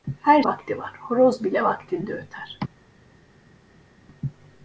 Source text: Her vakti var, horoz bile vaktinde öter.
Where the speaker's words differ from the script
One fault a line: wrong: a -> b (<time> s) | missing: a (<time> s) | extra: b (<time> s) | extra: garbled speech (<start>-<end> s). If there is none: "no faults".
no faults